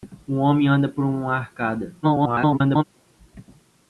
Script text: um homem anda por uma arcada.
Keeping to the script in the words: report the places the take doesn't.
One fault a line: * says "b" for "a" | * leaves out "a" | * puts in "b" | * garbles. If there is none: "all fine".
* garbles